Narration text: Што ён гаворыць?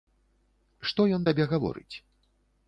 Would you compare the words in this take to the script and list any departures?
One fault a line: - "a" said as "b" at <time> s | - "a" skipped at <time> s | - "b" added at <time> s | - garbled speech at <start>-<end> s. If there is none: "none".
- "табе" added at 1.3 s